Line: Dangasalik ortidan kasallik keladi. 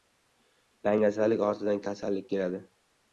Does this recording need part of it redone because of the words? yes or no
no